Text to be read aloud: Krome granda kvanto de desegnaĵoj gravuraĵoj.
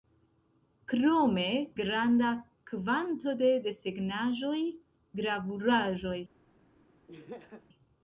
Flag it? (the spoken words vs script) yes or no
no